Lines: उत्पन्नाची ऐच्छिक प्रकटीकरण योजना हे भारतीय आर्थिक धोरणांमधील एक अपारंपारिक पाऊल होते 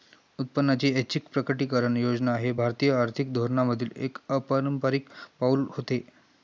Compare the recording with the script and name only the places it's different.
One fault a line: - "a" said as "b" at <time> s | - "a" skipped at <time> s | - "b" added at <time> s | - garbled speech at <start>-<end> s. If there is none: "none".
none